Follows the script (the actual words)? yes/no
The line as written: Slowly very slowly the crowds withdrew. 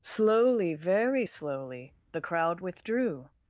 no